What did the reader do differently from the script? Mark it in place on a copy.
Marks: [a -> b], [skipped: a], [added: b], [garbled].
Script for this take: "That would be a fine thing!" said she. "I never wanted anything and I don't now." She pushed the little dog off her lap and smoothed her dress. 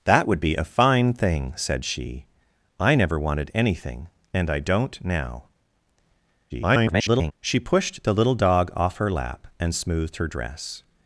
"That would be a fine thing!" said she. "I never wanted anything and I don't now." [garbled] She pushed the little dog off her lap and smoothed her dress.